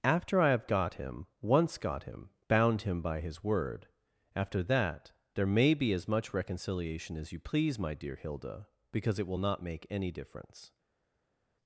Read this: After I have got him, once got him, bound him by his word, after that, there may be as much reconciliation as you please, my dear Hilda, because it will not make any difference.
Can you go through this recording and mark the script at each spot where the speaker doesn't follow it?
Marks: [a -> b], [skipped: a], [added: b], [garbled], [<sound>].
After I have got him, once got him, bound him by his word, after that, there may be as much reconciliation as you please, my dear Hilda, because it will not make any difference.